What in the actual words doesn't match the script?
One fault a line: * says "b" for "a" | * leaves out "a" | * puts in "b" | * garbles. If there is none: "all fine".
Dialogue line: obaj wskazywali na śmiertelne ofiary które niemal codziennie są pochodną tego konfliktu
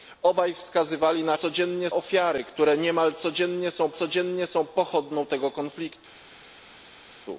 * says "codziennie" for "śmiertelne"
* puts in "codziennie są"